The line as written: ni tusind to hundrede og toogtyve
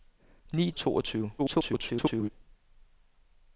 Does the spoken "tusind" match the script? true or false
false